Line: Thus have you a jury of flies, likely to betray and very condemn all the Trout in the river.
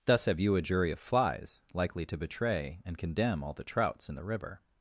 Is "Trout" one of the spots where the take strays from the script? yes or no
yes